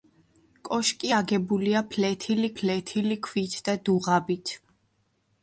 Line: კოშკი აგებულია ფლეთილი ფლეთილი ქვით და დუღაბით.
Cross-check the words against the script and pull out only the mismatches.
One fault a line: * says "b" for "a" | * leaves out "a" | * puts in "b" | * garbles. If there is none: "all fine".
all fine